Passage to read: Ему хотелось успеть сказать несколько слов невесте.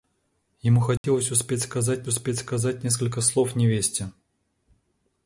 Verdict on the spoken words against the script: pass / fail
fail